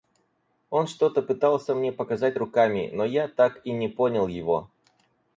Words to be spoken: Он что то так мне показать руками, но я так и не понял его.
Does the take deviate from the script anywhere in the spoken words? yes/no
yes